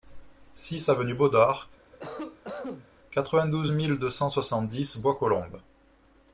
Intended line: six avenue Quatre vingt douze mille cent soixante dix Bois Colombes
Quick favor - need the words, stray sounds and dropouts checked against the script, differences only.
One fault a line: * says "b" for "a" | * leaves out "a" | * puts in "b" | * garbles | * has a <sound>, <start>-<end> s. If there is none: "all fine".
* puts in "Baudard"
* has a cough, 1.9-2.9 s
* puts in "deux"